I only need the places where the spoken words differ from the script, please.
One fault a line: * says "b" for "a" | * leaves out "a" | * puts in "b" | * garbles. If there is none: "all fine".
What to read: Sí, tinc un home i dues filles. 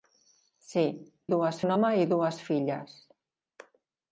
* says "dues" for "tinc"